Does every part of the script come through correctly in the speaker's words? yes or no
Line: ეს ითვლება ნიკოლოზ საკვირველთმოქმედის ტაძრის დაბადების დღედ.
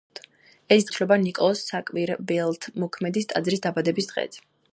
yes